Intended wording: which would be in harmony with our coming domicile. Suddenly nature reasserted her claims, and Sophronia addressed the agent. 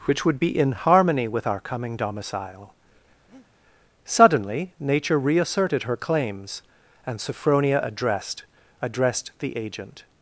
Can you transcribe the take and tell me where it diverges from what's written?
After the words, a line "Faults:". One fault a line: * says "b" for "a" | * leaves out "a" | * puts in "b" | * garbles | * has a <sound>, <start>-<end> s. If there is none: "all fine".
which would be in harmony with our coming domicile. Suddenly nature reasserted her claims, and Sophronia addressed addressed the agent.
Faults:
* has a breath, 3.3-3.5 s
* puts in "addressed"